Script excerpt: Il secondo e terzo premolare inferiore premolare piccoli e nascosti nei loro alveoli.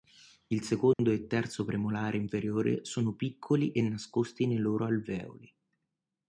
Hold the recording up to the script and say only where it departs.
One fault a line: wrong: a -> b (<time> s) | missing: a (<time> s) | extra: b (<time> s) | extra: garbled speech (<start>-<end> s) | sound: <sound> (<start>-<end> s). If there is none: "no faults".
sound: dropout (0.9-1.0 s)
wrong: premolare -> sono (2.9 s)